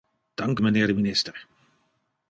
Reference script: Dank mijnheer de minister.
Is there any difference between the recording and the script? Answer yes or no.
no